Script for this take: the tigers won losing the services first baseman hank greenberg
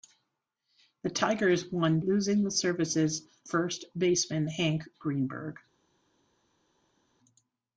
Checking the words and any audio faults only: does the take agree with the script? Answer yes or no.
yes